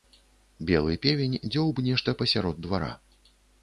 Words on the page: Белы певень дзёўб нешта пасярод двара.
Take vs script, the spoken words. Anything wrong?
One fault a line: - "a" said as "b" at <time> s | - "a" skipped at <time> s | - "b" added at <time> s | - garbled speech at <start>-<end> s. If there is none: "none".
none